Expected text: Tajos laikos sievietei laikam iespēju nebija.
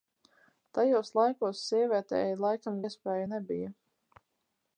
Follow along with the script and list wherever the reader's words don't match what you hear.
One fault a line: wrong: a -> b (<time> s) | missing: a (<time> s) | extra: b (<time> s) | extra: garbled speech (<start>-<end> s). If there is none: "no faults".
no faults